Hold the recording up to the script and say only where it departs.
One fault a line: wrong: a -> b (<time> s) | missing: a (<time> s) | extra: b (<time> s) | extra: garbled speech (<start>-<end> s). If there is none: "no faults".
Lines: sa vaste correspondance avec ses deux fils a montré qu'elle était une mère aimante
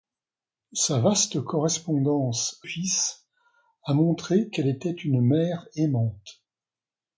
missing: avec ses deux (2.6 s)